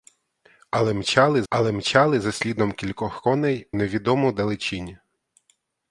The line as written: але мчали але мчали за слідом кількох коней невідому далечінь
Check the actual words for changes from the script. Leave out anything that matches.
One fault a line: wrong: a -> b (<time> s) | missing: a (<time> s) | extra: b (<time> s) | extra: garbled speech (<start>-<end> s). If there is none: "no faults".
no faults